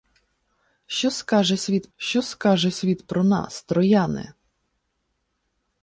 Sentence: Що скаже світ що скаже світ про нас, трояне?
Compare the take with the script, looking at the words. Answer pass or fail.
pass